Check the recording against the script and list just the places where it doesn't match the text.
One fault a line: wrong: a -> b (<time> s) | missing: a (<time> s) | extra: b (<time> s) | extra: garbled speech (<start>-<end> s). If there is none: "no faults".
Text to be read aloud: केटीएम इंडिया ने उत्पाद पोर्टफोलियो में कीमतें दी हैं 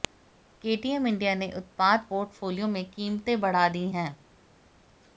extra: बढ़ा (3.4 s)